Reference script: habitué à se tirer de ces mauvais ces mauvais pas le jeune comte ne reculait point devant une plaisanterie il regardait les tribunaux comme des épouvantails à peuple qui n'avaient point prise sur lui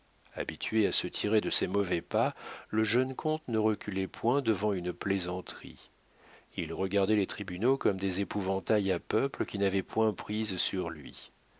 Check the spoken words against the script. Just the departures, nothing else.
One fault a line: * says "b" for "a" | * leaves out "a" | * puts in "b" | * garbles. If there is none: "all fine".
* leaves out "ces mauvais"